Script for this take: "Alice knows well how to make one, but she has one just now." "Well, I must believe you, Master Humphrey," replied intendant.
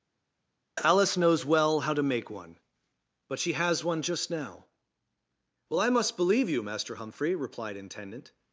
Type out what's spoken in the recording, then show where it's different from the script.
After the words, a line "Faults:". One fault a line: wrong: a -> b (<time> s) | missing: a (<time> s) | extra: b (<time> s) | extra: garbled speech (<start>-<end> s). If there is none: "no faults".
"Alice knows well how to make one, but she has one just now." "Well, I must believe you, Master Humphrey," replied intendant.
Faults:
no faults